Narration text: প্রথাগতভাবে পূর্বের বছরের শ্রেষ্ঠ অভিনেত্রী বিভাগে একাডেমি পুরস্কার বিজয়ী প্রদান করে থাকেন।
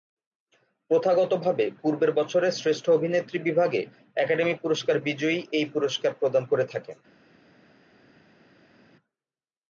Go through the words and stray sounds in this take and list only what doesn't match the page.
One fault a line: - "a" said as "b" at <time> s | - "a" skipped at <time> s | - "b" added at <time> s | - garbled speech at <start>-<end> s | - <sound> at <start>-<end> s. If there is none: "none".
- "এই পুরস্কার" added at 5.5 s